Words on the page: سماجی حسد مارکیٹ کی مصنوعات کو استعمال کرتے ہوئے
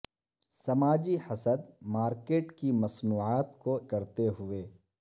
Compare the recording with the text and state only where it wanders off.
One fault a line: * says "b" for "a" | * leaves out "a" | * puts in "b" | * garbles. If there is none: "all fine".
* leaves out "استعمال"